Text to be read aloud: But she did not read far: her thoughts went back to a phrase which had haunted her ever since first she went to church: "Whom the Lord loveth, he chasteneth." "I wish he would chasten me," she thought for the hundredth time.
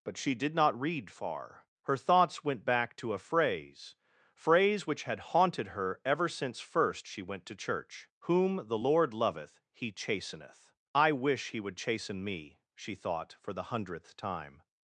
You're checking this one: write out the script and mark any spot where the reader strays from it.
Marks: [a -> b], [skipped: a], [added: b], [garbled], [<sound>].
But she did not read far: her thoughts went back to a phrase [added: phrase] which had haunted her ever since first she went to church: "Whom the Lord loveth, he chasteneth." "I wish he would chasten me," she thought for the hundredth time.